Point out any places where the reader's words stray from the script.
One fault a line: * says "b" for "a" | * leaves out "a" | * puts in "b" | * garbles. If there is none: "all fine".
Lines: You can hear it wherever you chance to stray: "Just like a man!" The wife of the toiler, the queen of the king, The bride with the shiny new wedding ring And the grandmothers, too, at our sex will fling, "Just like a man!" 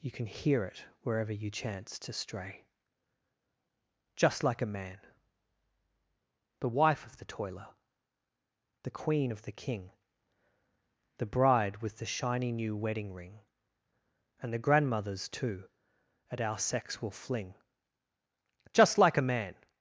all fine